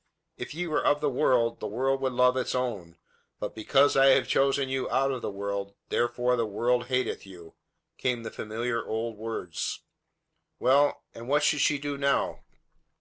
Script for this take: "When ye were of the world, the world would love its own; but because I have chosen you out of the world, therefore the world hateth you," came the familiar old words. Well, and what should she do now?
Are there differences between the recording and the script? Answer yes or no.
yes